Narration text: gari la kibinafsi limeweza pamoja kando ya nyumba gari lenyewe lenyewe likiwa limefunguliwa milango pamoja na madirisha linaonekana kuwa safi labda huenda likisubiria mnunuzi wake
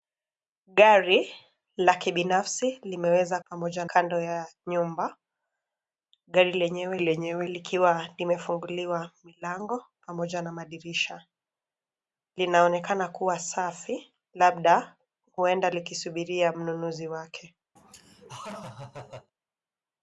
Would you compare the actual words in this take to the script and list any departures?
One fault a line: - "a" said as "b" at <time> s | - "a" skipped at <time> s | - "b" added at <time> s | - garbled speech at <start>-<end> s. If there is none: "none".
none